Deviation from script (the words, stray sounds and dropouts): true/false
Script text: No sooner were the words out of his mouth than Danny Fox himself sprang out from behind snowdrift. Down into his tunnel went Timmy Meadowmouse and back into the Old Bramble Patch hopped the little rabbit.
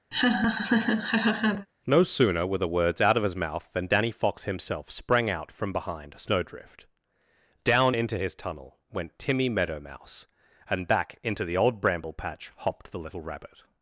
true